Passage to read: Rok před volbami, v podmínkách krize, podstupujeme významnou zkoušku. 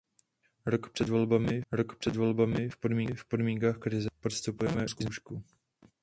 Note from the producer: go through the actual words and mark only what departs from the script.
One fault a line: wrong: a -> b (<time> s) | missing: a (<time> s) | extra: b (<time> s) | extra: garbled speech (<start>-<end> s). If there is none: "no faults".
extra: rok před volbami (1.7 s)
missing: významnou (4.9 s)